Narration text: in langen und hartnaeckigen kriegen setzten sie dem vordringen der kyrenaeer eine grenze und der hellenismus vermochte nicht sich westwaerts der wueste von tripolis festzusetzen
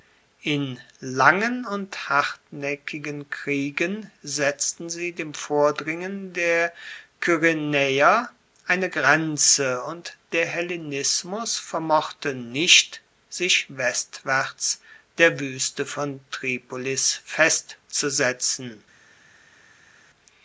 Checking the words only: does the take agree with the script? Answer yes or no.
yes